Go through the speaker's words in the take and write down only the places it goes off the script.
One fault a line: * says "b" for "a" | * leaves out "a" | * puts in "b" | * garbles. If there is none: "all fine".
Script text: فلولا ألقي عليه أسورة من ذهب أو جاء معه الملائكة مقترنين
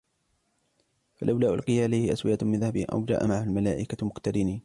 all fine